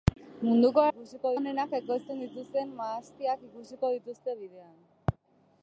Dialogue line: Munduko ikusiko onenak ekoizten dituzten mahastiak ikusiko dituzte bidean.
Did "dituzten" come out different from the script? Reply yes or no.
no